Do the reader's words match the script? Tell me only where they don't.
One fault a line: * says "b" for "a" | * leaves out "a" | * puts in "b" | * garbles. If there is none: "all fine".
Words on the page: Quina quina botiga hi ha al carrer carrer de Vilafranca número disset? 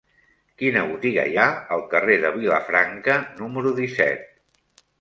* leaves out "quina"
* leaves out "carrer"